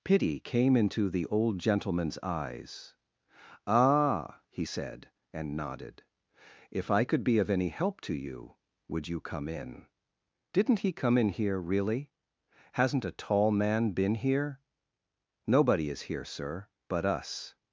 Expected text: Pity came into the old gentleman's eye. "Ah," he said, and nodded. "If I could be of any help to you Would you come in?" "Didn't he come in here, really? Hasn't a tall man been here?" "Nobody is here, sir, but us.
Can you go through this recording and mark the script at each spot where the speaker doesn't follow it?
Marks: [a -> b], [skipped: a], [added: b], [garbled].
Pity came into the old gentleman's [eye. -> eyes] "Ah," he said, and nodded. "If I could be of any help to you Would you come in?" "Didn't he come in here, really? Hasn't a tall man been here?" "Nobody is here, sir, but us.